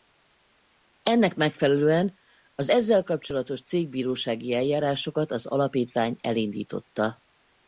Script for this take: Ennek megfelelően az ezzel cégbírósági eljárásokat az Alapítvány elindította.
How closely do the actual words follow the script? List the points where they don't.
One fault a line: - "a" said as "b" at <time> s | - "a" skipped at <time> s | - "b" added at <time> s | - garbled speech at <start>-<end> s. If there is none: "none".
- "kapcsolatos" added at 3.0 s